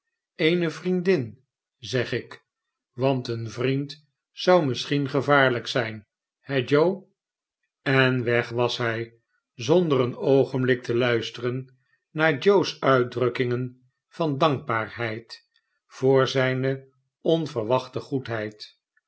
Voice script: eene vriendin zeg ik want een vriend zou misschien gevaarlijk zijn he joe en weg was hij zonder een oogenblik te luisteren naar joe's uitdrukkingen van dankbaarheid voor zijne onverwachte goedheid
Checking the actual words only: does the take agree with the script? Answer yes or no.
yes